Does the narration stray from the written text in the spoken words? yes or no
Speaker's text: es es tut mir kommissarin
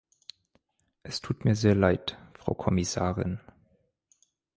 yes